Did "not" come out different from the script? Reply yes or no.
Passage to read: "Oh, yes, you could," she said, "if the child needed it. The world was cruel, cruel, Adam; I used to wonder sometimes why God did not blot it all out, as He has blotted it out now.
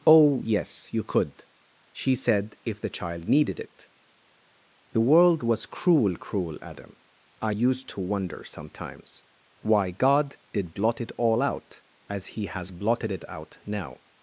yes